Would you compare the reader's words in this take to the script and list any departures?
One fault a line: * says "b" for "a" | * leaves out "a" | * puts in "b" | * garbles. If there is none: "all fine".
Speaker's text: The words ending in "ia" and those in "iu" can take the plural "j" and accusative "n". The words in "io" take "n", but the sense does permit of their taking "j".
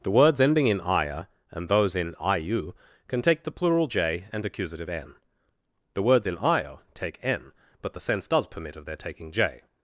all fine